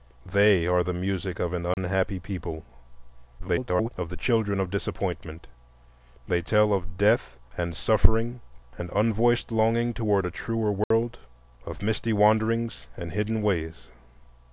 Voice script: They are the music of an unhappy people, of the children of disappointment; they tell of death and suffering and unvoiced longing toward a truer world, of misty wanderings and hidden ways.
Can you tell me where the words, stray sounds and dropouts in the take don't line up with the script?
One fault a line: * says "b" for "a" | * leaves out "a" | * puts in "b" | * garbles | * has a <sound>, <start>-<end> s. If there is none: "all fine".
* has a dropout, 1.7-1.8 s
* garbles
* has a dropout, 10.8-10.9 s